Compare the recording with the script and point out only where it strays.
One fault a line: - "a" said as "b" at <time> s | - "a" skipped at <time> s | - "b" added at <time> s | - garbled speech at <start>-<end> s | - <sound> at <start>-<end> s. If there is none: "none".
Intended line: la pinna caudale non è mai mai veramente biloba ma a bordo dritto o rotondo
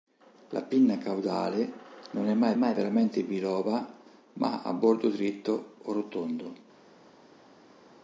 none